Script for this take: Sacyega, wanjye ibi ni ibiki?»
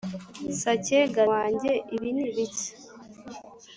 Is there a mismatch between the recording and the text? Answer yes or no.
no